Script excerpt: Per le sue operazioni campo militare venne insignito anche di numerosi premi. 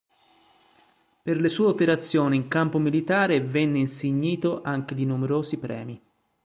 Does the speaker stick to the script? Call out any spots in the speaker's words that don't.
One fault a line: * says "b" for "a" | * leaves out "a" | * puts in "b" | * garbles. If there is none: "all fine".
* puts in "in"